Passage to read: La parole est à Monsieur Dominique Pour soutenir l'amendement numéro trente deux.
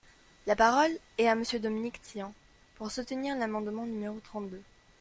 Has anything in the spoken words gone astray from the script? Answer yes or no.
yes